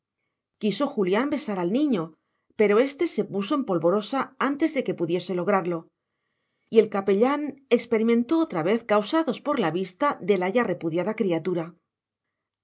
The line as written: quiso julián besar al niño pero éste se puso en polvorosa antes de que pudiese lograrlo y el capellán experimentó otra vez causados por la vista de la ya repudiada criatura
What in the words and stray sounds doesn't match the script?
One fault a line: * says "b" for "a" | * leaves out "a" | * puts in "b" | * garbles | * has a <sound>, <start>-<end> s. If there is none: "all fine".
all fine